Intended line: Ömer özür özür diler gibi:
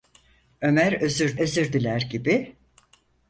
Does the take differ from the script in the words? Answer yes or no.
no